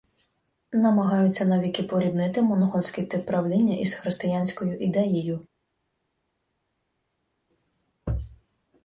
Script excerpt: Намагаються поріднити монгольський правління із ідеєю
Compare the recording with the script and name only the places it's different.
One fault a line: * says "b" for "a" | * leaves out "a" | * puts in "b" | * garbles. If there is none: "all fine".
* puts in "навіки"
* puts in "тип"
* puts in "християнською"